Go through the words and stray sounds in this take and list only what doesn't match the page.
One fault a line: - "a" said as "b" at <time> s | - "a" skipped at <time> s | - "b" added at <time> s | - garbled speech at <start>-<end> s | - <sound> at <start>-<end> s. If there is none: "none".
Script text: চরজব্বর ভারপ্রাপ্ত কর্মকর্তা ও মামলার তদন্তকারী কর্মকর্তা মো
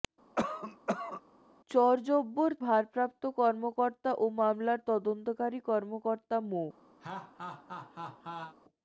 - cough at 0.4-1.2 s
- laugh at 7.0-8.5 s